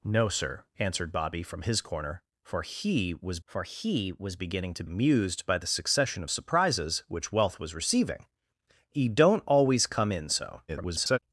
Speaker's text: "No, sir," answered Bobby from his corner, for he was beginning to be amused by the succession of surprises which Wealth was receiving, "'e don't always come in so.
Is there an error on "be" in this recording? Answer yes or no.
yes